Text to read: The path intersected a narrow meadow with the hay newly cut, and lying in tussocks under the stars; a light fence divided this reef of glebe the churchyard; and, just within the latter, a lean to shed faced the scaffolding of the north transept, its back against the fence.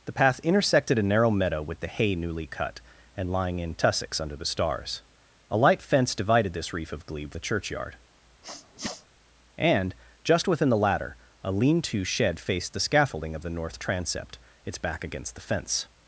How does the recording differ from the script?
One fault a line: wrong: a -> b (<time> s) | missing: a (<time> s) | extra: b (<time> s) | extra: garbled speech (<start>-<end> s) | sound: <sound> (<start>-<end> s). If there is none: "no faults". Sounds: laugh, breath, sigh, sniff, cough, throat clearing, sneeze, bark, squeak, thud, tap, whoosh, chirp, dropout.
sound: sneeze (8.4-9.1 s)